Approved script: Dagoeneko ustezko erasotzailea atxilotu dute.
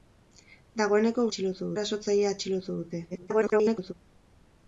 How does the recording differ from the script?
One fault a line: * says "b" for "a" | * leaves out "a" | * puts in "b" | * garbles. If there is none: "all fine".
* says "atxilotu" for "ustezko"
* garbles